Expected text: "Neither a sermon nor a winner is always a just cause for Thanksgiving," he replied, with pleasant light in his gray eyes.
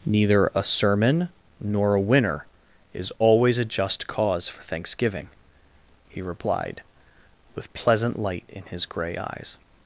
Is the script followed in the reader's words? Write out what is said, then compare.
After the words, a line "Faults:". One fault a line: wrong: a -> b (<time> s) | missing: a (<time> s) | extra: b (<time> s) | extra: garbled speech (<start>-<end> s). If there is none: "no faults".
"Neither a sermon nor a winner is always a just cause for Thanksgiving," he replied, with pleasant light in his gray eyes.
Faults:
no faults